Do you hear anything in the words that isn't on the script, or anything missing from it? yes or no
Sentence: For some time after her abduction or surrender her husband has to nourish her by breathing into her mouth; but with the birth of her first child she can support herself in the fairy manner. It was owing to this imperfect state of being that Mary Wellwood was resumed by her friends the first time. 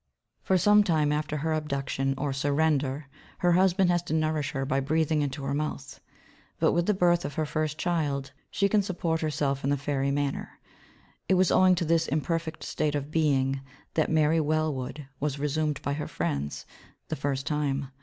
no